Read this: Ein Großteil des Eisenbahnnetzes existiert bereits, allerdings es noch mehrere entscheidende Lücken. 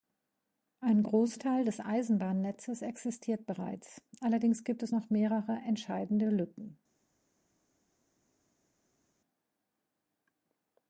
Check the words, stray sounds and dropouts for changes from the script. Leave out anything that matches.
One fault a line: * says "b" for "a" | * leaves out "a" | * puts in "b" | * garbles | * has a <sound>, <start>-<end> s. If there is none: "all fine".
* puts in "gibt"